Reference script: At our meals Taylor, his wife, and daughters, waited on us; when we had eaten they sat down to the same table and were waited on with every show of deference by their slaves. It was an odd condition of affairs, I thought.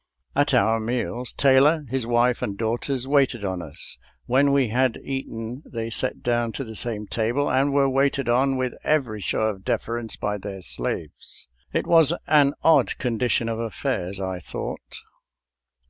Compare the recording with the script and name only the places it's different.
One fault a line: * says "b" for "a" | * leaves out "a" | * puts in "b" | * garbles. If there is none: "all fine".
all fine